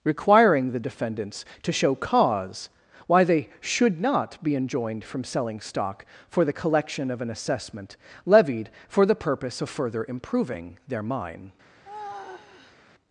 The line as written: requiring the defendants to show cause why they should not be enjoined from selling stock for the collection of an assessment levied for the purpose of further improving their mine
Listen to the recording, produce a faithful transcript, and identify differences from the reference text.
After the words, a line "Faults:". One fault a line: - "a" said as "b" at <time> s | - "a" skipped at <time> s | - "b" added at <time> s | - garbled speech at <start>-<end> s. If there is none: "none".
requiring the defendants to show cause why they should not be enjoined from selling stock for the collection of an assessment levied for the purpose of further improving their mine
Faults:
none